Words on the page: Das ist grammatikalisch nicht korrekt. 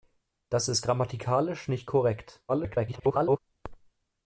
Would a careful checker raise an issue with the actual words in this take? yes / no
yes